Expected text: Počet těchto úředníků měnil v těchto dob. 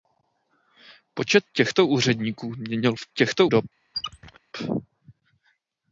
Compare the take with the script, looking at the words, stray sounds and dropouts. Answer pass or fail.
fail